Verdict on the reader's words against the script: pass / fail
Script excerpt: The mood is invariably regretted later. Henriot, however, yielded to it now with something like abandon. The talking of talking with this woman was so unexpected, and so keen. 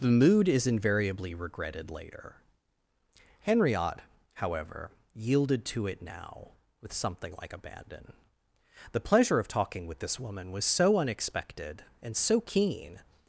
fail